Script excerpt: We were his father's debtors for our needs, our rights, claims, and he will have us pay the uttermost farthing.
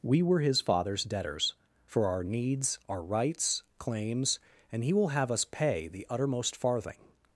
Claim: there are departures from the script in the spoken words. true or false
false